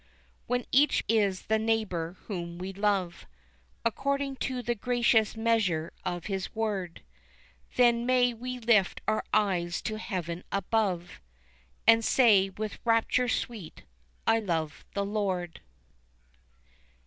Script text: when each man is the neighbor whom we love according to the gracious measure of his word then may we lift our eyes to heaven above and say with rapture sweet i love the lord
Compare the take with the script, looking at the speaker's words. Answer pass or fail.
fail